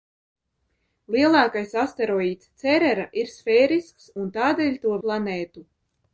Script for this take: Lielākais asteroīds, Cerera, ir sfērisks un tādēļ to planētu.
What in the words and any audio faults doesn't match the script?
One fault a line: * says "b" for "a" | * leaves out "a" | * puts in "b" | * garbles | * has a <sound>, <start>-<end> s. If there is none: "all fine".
all fine